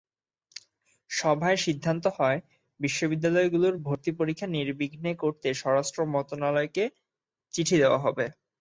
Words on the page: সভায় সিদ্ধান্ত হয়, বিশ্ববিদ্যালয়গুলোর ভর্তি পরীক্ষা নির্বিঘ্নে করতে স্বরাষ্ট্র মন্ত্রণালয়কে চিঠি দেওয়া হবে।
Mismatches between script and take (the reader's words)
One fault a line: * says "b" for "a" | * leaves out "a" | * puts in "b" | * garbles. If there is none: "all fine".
all fine